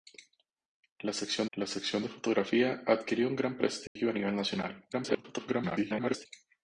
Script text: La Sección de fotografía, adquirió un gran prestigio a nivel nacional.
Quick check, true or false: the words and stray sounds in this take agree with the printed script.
false